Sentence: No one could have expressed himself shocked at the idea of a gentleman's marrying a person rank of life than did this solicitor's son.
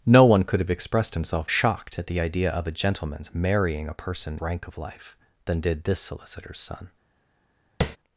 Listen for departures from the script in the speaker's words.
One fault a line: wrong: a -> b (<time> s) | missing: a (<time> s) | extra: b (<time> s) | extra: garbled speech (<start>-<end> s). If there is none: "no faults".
no faults